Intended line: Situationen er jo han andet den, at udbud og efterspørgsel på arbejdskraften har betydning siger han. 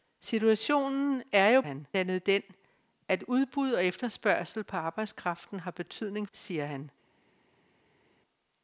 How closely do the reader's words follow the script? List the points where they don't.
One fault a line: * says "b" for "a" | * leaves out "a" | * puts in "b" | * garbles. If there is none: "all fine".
all fine